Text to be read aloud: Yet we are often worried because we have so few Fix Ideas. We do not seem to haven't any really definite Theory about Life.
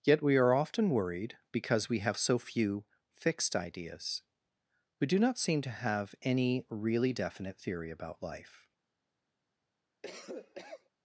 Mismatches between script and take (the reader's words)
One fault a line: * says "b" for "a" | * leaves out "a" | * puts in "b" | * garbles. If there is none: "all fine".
* says "Fixed" for "Fix"
* says "have" for "haven't"